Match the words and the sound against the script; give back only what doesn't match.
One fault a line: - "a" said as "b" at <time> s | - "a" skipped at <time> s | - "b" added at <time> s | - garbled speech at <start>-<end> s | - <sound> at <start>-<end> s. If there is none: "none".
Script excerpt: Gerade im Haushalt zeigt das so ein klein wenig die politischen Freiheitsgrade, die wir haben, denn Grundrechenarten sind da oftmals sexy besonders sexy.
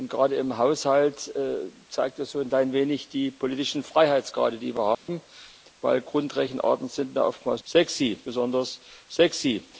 - dropout at 4.9-5.1 s